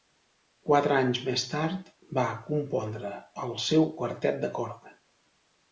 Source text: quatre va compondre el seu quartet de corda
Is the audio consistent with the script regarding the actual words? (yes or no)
no